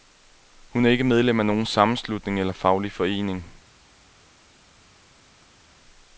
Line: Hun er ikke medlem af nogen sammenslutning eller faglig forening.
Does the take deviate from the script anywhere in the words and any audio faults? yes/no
no